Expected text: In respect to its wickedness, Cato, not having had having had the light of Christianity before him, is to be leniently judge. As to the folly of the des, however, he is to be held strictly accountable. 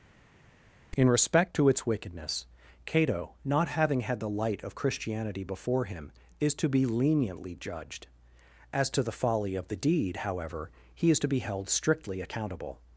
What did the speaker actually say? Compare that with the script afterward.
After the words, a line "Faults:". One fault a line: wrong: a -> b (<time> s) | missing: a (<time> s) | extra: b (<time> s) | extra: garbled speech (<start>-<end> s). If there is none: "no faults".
In respect to its wickedness, Cato, not having had the light of Christianity before him, is to be leniently judged. As to the folly of the deed, however, he is to be held strictly accountable.
Faults:
missing: having had (4.2 s)
wrong: judge -> judged (7.6 s)
wrong: des -> deed (9.8 s)